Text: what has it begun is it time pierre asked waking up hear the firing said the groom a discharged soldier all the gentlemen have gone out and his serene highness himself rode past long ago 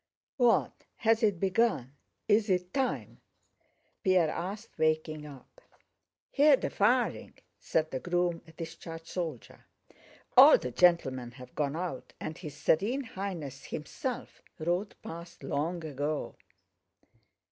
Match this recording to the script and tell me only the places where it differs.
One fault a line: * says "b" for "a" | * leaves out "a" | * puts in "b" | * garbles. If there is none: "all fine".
all fine